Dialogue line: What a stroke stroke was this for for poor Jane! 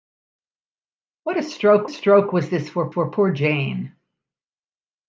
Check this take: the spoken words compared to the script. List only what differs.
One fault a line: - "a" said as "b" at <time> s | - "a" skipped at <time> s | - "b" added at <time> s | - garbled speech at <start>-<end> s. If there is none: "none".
none